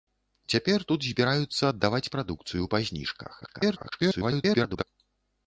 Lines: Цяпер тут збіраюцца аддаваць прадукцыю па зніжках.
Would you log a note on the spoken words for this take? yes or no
yes